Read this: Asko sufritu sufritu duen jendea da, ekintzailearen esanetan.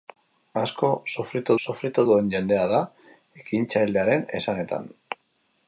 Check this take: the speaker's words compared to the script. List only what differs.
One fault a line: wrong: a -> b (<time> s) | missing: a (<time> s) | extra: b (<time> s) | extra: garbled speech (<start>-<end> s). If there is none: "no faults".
no faults